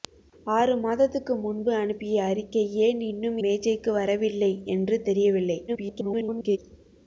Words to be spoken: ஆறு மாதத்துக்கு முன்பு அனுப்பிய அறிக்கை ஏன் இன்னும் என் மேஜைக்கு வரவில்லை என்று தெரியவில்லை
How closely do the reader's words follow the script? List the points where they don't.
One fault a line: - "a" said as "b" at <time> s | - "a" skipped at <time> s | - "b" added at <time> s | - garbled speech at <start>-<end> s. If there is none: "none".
- "என்" skipped at 3.4 s
- garbled speech at 5.7-6.6 s